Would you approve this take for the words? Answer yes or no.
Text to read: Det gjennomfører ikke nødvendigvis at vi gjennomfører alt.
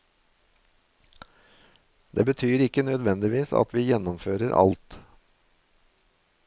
no